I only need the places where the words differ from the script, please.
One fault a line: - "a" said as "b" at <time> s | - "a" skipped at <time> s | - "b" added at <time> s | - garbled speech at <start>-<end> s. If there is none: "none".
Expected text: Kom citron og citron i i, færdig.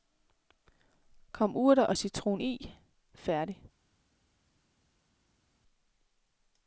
- "citron" said as "urter" at 1.6 s
- "i" skipped at 2.7 s